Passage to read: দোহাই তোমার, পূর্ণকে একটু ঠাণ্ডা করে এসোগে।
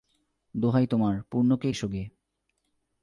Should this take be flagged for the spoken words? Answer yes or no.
yes